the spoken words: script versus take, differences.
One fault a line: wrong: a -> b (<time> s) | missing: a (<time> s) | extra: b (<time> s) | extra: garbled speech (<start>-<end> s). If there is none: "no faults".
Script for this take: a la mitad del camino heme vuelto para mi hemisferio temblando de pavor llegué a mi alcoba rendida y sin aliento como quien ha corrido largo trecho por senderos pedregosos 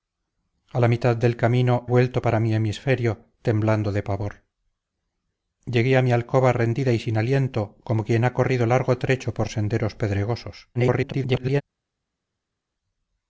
missing: heme (1.9 s)
extra: garbled speech (10.7-11.6 s)